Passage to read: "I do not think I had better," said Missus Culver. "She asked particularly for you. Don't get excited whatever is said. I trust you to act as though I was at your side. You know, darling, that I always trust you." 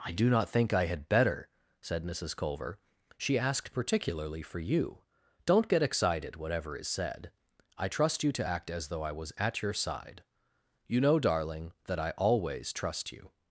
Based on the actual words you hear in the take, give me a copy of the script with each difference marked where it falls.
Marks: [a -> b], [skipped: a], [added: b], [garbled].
"I do not think I had better," said Missus Culver. "She asked particularly for you. Don't get excited whatever is said. I trust you to act as though I was at your side. You know, darling, that I always trust you."